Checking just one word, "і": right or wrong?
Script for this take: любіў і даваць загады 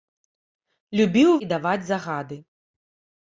right